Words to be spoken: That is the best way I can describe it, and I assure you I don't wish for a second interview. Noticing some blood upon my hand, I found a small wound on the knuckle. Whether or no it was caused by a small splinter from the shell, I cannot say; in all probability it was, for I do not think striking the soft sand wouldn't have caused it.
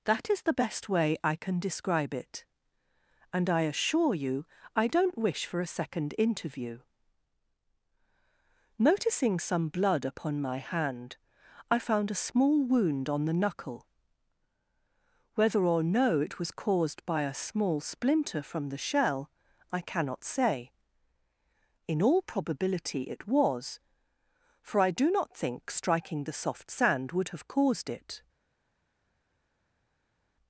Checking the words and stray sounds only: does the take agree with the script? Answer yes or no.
no